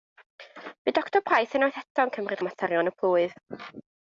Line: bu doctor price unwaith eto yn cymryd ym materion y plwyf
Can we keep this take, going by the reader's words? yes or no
yes